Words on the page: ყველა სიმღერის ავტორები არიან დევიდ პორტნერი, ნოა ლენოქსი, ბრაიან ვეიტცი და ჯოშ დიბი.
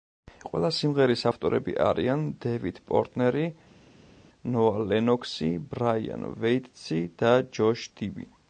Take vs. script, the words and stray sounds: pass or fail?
pass